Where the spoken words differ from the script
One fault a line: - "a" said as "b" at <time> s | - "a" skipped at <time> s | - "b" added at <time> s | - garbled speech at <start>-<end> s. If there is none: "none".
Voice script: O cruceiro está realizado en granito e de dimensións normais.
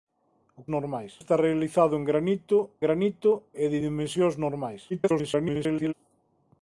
- "cruceiro" said as "normais" at 0.8 s
- "granito" added at 2.8 s
- garbled speech at 4.9-5.9 s